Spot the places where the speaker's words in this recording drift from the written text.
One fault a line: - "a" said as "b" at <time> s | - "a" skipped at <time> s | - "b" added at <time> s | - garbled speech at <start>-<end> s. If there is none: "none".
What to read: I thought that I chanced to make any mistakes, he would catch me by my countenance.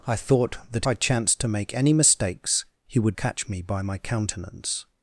none